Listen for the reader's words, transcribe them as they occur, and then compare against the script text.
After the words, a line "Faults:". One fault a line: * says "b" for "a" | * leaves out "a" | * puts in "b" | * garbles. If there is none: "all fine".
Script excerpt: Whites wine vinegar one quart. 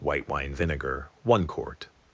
White wine vinegar one quart.
Faults:
* says "White" for "Whites"